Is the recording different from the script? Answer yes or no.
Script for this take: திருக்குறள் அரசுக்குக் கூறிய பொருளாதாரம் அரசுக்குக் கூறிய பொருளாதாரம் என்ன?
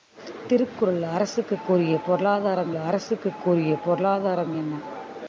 no